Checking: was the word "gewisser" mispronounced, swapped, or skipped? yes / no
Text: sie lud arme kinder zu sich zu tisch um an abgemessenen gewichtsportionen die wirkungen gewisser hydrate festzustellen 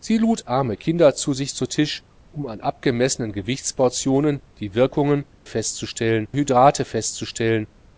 yes